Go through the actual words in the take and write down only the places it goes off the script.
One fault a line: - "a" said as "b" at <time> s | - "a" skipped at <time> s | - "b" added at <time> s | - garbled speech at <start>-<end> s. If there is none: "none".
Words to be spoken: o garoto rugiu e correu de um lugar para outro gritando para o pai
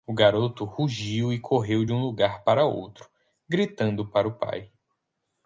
none